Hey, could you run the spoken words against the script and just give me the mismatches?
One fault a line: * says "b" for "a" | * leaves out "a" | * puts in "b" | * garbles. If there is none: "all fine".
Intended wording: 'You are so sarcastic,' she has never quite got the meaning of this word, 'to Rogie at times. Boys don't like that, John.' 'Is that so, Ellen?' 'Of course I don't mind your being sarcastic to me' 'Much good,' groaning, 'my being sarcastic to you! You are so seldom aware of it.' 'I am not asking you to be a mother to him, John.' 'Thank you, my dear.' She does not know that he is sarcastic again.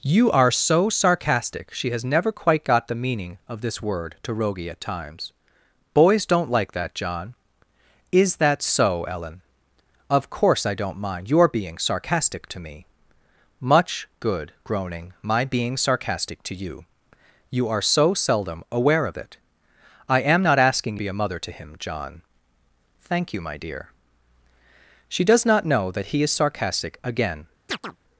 * leaves out "you to"